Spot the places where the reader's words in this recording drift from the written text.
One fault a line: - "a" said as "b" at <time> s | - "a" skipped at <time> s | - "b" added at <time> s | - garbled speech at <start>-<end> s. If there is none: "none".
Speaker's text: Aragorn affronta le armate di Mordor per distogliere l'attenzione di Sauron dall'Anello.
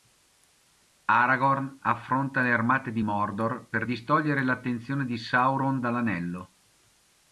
none